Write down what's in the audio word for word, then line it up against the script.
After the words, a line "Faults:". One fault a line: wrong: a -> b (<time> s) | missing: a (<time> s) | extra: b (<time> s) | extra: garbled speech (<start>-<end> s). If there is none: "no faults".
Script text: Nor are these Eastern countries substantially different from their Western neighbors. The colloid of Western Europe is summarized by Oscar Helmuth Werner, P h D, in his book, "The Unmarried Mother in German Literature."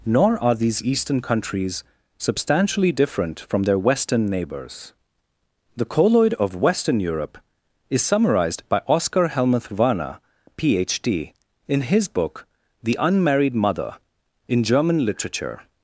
Nor are these Eastern countries substantially different from their Western neighbors. The colloid of Western Europe is summarized by Oscar Helmuth Werner, P h D, in his book, "The Unmarried Mother in German Literature."
Faults:
no faults